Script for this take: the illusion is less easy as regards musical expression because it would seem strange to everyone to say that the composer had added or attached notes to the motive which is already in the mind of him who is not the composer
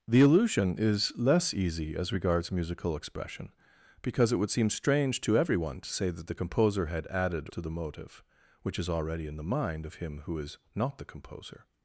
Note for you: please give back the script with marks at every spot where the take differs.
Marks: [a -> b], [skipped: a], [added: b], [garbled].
the illusion is less easy as regards musical expression because it would seem strange to everyone to say that the composer had added [skipped: or attached notes] to the motive which is already in the mind of him who is not the composer